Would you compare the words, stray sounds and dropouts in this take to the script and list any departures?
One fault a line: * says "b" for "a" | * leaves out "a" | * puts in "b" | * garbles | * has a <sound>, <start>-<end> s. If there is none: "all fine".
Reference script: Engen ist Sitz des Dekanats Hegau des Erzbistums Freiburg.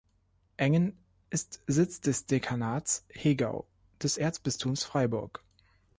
all fine